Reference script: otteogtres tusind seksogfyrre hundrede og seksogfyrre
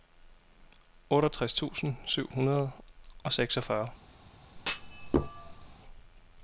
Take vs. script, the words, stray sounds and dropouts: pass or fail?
fail